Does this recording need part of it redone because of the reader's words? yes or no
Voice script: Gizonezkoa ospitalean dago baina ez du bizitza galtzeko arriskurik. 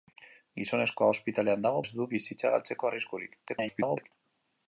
yes